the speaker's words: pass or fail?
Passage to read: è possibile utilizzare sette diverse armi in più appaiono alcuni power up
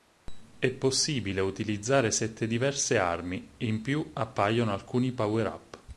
pass